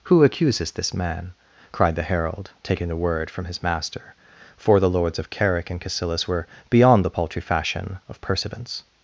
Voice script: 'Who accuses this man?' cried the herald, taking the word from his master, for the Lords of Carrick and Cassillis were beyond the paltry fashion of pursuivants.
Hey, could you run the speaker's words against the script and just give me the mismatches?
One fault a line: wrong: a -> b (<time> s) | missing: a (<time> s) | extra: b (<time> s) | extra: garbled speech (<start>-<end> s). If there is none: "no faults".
no faults